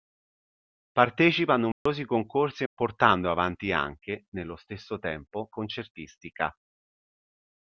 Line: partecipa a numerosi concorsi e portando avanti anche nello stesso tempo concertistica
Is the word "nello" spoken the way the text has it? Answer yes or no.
yes